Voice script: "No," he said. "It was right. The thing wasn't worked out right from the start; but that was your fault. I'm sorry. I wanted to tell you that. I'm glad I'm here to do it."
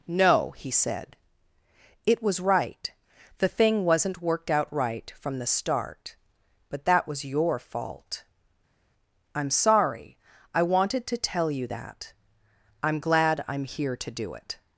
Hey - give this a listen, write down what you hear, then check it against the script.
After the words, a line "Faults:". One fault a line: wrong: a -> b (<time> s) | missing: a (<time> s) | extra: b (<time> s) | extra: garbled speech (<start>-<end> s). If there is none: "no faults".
"No," he said. "It was right. The thing wasn't worked out right from the start; but that was your fault. I'm sorry. I wanted to tell you that. I'm glad I'm here to do it."
Faults:
no faults